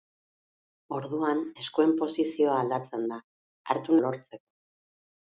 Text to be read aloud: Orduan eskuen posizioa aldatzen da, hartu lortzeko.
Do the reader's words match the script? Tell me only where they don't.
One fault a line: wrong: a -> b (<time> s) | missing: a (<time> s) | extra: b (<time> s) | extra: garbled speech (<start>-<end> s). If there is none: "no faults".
no faults